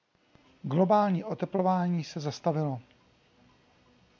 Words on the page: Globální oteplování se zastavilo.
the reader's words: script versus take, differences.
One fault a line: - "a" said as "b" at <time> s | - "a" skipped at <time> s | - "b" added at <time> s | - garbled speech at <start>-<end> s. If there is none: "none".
none